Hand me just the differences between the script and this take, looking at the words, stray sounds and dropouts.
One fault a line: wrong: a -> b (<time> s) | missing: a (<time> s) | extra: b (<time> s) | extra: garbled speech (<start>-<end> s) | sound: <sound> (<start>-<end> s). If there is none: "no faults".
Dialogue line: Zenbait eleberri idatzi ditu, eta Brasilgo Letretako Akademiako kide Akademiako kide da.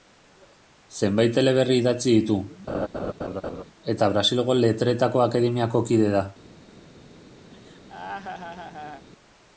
sound: laugh (2.7-3.6 s)
missing: Akademiako kide (6.1 s)
sound: laugh (7.5-9.1 s)